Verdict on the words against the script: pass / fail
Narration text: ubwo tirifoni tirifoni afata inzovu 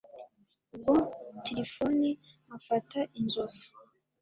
fail